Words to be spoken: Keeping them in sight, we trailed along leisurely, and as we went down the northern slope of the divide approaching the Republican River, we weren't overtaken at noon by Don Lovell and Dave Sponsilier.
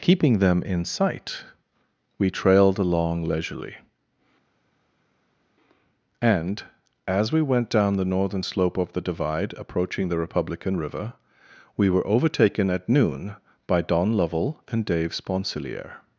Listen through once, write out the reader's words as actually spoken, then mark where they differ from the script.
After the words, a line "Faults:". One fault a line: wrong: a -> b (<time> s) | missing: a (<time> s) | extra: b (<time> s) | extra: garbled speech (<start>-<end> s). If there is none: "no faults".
Keeping them in sight, we trailed along leisurely, and as we went down the northern slope of the divide approaching the Republican River, we were overtaken at noon by Don Lovell and Dave Sponsilier.
Faults:
wrong: weren't -> were (11.9 s)